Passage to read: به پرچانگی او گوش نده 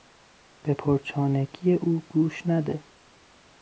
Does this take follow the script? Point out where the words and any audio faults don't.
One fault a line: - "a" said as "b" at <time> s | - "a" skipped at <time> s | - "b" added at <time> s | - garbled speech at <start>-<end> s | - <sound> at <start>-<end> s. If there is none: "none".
none